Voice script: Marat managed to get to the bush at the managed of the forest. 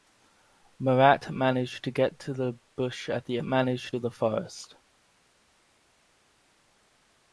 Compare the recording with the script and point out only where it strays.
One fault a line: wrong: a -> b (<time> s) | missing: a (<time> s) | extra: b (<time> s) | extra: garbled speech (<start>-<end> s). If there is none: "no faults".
no faults